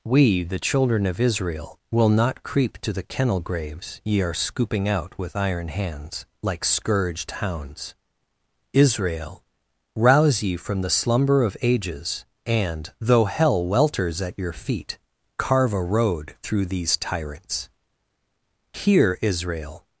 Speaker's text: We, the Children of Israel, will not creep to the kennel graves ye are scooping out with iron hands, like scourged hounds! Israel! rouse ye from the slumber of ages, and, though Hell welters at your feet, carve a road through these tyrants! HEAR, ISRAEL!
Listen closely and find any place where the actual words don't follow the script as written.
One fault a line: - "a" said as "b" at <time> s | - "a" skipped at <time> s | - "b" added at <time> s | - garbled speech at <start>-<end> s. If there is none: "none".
none